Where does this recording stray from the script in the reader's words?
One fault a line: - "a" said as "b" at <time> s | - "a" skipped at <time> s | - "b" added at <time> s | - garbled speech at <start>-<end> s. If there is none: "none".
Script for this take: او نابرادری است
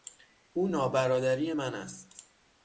- "من" added at 1.5 s